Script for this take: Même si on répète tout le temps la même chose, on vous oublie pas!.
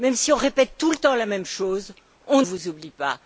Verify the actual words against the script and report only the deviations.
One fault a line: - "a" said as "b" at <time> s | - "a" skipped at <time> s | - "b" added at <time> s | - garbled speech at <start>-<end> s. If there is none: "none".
none